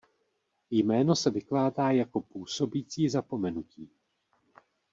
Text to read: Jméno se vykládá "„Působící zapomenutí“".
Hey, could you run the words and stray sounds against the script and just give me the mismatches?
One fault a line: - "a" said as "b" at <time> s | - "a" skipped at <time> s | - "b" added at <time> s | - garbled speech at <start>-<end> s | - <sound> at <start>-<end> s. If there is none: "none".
- "jako" added at 1.9 s